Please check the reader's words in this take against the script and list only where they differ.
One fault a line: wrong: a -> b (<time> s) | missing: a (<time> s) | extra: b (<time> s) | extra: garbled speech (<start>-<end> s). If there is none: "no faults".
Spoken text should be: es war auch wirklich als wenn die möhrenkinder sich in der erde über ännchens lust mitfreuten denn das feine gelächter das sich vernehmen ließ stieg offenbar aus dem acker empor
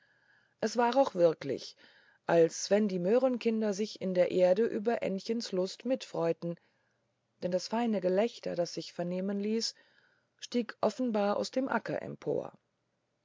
no faults